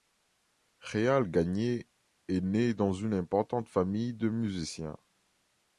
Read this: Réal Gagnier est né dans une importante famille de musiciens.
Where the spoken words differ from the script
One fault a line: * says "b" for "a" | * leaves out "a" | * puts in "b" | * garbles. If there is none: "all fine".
all fine